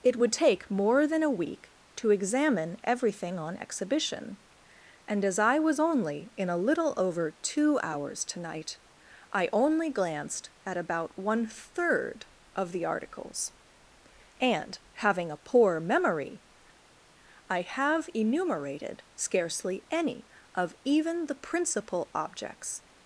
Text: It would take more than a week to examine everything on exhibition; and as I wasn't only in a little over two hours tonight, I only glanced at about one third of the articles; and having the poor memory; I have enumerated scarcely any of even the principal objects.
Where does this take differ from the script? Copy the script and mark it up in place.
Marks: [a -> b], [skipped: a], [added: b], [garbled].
It would take more than a week to examine everything on exhibition; and as I [wasn't -> was] only in a little over two hours tonight, I only glanced at about one third of the articles; and having [the -> a] poor memory; I have enumerated scarcely any of even the principal objects.